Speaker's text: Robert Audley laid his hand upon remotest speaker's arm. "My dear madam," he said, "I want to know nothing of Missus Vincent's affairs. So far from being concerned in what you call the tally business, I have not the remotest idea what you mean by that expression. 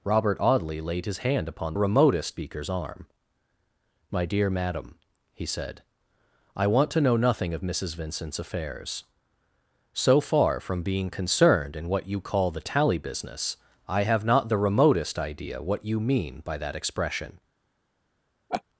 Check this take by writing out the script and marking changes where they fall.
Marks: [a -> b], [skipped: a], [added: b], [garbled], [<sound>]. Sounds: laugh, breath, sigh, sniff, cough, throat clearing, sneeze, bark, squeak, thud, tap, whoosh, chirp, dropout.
Robert Audley laid his hand upon remotest speaker's arm. "My dear madam," he said, "I want to know nothing of Missus Vincent's affairs. So far from being concerned in what you call the tally business, I have not the remotest idea what you mean by that expression. [laugh]